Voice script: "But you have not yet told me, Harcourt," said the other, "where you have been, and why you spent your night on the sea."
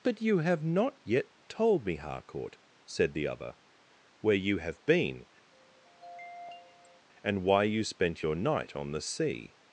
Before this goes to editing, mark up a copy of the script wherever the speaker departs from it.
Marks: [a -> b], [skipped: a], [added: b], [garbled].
"But you have not yet told me, Harcourt," said the other, "where you have been, and why you spent your night on the sea."